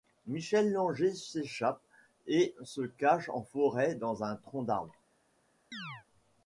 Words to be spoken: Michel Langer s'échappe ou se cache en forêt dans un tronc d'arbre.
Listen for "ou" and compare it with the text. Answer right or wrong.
wrong